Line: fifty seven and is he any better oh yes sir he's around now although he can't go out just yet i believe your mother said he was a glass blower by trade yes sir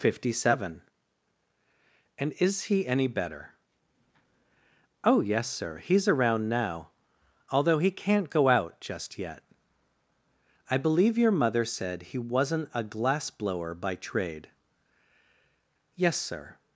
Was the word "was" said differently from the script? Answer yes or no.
yes